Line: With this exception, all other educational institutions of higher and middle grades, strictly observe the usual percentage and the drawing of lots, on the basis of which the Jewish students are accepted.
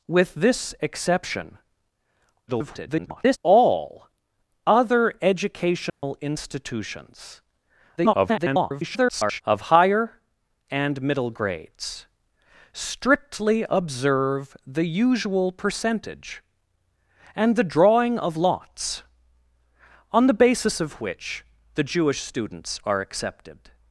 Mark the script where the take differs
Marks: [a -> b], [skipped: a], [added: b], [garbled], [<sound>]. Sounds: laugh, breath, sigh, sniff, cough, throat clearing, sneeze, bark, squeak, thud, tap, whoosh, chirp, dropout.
With this exception, [garbled] all other educational [dropout] institutions [garbled] of higher and middle grades, strictly observe the usual percentage and the drawing of lots, on the basis of which the Jewish students are accepted.